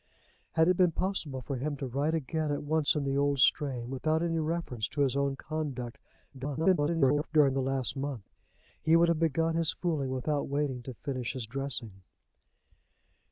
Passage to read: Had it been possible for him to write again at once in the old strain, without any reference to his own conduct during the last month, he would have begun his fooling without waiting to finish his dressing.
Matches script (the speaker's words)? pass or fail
fail